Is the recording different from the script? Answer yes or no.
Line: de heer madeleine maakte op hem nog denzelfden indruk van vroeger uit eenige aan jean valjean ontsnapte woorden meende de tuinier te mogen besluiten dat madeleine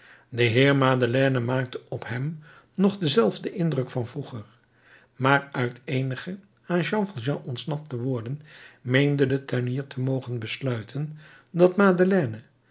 yes